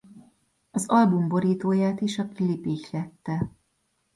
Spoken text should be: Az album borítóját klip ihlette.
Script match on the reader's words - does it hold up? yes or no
no